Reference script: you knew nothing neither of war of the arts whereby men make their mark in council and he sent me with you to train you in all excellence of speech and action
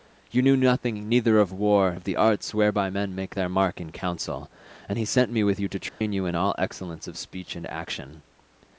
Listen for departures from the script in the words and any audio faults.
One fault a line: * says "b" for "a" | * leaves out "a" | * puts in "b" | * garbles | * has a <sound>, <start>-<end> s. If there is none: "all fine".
* has a dropout, 5.9-6.0 s